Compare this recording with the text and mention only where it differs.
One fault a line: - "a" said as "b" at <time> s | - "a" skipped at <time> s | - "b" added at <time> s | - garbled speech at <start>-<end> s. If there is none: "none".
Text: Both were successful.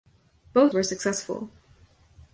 none